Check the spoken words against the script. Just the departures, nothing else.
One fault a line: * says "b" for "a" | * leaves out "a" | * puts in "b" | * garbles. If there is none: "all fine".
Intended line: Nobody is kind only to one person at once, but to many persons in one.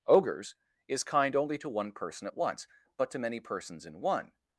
* says "Ogres" for "Nobody"